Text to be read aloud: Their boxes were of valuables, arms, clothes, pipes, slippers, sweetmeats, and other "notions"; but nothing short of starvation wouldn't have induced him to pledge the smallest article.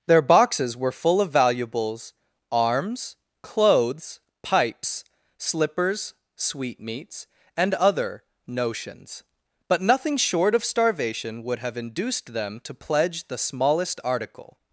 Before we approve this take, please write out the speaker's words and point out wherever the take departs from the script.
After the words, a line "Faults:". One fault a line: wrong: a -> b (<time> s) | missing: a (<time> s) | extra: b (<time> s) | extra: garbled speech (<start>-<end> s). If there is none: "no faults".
Their boxes were full of valuables, arms, clothes, pipes, slippers, sweetmeats, and other "notions"; but nothing short of starvation would have induced them to pledge the smallest article.
Faults:
extra: full (0.9 s)
wrong: wouldn't -> would (11.4 s)
wrong: him -> them (12.3 s)